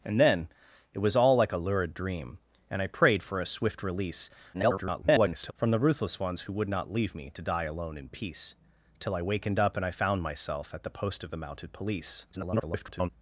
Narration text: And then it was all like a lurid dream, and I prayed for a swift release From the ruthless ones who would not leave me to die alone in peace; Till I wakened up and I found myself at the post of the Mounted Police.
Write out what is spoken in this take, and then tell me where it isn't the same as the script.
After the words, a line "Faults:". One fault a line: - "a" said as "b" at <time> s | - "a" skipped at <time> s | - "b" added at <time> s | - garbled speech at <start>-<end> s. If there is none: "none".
And then it was all like a lurid dream, and I prayed for a swift release [garbled] From the ruthless ones who would not leave me to die alone in peace; Till I wakened up and I found myself at the post of the Mounted Police. [garbled]
Faults:
- garbled speech at 4.5-5.5 s
- garbled speech at 12.3-13.1 s